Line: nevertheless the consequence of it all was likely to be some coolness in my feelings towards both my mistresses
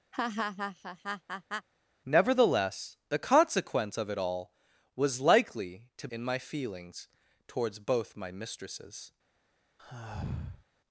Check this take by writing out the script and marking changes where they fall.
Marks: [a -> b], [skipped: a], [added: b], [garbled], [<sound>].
[laugh] nevertheless the consequence of it all was likely to [skipped: be some coolness] in my feelings towards both my mistresses [sigh]